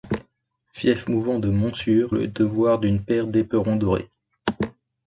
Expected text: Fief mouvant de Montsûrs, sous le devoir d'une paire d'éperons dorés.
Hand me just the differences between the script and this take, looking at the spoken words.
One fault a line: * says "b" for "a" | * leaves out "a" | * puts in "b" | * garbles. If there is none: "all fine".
* leaves out "sous"